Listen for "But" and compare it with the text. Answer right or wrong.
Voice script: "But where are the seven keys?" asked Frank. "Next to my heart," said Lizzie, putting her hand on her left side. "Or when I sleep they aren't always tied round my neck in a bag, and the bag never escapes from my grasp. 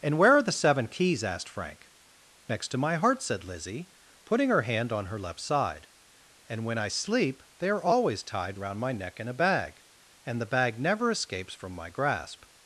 wrong